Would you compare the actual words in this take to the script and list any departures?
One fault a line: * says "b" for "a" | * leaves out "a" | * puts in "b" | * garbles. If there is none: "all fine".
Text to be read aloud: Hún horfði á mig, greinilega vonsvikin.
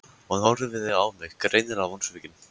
all fine